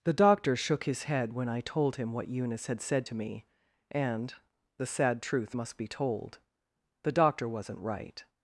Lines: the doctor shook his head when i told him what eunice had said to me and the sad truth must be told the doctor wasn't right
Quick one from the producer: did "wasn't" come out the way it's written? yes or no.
yes